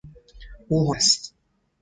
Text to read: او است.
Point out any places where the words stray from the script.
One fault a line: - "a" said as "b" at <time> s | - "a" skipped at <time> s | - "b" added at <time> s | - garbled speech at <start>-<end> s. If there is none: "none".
none